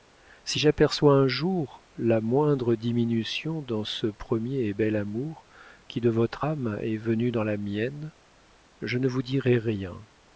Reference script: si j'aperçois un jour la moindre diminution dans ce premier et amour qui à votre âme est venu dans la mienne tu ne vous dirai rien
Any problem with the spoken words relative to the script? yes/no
yes